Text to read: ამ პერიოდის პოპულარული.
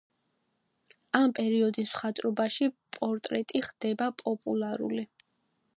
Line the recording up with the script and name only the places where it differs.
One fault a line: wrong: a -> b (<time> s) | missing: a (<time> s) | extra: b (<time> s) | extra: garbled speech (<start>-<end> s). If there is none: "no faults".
extra: მხატვრობაში პორტრეტი ხდება (2.0 s)